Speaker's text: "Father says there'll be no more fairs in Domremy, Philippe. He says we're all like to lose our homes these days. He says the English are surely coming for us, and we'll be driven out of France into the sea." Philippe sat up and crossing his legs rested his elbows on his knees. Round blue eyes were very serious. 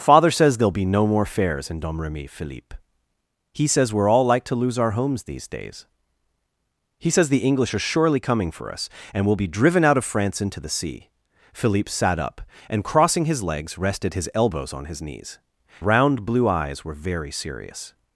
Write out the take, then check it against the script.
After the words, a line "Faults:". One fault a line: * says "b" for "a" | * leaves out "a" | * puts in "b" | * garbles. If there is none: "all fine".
"Father says there'll be no more fairs in Domremy, Philippe. He says we're all like to lose our homes these days. He says the English are surely coming for us, and we'll be driven out of France into the sea." Philippe sat up and crossing his legs rested his elbows on his knees. Round blue eyes were very serious.
Faults:
all fine